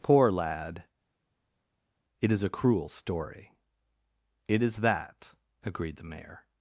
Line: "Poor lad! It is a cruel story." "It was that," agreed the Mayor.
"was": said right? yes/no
no